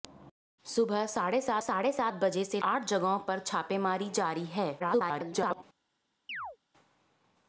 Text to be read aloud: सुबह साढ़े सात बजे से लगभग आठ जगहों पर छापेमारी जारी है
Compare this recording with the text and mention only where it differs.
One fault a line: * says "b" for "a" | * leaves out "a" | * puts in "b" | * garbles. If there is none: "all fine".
* puts in "साढ़े सात"
* leaves out "लगभग"
* garbles